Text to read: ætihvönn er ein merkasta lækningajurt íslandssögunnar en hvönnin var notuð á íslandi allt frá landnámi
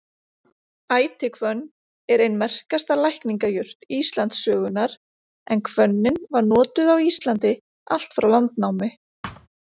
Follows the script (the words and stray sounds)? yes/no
no